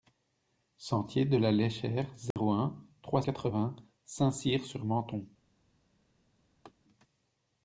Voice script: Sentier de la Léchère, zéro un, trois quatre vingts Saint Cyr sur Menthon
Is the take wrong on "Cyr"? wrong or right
right